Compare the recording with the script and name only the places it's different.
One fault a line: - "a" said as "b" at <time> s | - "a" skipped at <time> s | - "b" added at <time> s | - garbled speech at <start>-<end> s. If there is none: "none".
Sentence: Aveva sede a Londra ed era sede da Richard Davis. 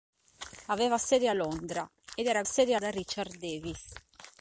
none